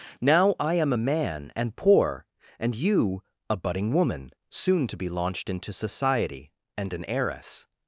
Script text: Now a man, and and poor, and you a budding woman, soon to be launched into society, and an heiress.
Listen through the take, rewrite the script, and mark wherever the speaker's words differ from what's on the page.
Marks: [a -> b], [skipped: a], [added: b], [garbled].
Now [added: I am] a man, and [skipped: and] poor, and you a budding woman, soon to be launched into society, and an heiress.